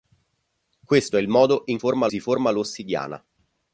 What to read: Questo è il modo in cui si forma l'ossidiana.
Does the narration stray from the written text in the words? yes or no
yes